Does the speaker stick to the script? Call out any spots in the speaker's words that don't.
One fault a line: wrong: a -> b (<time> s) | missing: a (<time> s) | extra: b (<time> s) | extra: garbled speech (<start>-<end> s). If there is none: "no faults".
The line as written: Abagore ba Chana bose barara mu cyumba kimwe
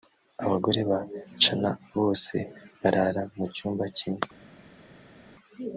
no faults